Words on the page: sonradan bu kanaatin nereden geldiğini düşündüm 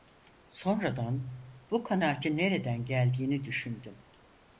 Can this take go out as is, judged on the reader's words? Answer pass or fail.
pass